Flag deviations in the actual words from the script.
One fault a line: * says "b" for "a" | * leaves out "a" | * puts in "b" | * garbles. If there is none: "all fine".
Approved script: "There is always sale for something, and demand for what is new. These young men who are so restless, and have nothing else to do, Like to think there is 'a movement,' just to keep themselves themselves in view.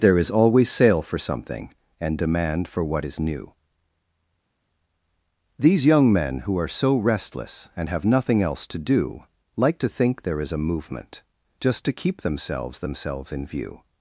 all fine